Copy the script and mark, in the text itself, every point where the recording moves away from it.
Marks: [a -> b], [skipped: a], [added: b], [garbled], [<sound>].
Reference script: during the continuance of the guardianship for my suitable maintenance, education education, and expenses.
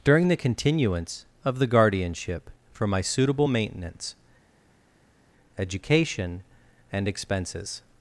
during the continuance of the guardianship for my suitable maintenance, education [skipped: education,] and expenses.